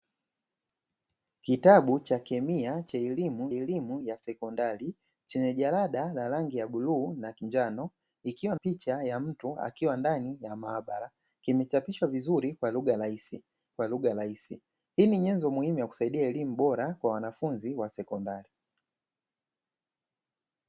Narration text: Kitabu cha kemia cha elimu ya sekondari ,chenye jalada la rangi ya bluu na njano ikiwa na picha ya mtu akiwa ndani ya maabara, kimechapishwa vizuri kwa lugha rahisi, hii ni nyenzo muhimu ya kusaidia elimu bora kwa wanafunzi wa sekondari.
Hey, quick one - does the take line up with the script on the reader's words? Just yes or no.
no